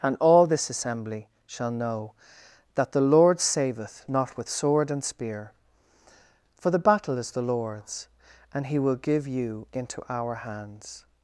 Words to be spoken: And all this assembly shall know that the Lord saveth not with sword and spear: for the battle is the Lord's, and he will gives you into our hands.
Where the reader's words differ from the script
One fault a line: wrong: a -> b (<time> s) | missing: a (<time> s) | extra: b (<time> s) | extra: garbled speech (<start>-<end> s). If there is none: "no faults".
wrong: gives -> give (9.0 s)